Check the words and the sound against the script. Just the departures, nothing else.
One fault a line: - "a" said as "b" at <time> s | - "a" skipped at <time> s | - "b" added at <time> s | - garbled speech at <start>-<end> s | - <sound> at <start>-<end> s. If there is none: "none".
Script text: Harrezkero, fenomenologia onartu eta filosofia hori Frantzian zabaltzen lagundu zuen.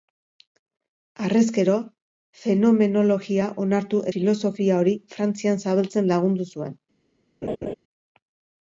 - "eta" skipped at 4.0 s
- laugh at 7.4-7.7 s